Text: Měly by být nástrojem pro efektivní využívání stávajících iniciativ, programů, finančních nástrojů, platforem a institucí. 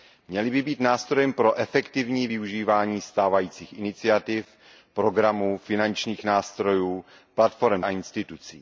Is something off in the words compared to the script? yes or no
no